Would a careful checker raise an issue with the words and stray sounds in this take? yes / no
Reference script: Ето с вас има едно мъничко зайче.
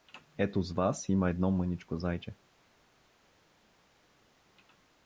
no